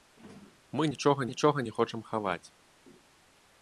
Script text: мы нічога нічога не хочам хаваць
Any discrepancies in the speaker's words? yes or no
no